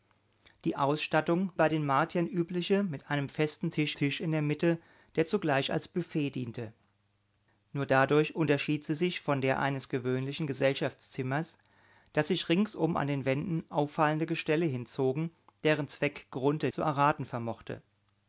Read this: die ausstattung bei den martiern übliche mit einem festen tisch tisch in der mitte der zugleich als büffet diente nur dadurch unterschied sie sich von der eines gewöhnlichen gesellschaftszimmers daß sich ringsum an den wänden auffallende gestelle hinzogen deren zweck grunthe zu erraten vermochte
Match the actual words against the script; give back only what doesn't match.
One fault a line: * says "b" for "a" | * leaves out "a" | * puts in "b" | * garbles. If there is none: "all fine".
all fine